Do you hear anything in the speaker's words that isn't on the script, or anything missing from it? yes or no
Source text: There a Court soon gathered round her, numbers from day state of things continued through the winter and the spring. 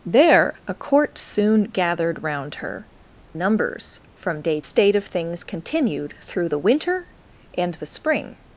no